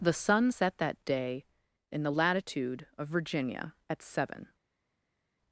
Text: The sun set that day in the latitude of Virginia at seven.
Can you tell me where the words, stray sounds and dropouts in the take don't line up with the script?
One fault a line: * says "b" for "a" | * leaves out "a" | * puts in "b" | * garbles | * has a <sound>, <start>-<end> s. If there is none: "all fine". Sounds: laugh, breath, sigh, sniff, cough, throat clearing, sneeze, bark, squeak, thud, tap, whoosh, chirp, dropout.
all fine